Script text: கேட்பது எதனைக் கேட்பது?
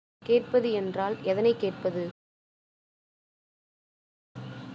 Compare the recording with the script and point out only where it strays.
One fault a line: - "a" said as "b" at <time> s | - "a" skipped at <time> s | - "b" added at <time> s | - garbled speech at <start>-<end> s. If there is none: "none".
- "என்றால்" added at 0.7 s